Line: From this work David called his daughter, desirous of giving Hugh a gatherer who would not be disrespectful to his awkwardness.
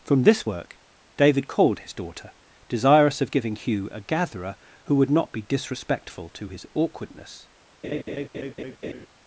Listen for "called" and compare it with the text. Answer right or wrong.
right